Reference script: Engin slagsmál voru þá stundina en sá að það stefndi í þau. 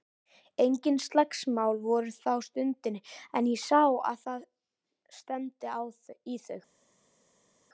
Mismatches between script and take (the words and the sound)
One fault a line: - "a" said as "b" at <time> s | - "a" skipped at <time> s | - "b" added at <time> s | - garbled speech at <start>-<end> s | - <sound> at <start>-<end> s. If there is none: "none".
- "ég" added at 3.5 s